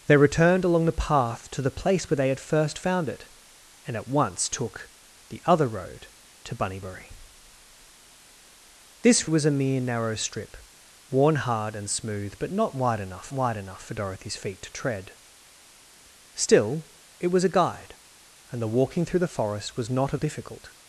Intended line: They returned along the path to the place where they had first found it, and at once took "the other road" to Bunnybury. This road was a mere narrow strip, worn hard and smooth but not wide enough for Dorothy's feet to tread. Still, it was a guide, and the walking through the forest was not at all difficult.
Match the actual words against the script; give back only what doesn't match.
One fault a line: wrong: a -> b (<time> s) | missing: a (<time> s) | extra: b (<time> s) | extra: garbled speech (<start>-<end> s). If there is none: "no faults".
missing: road (9.3 s)
extra: wide enough (13.3 s)
missing: all (20.2 s)